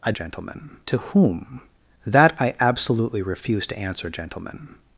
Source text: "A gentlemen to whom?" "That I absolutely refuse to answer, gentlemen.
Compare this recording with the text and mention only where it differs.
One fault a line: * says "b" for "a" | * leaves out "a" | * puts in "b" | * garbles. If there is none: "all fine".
all fine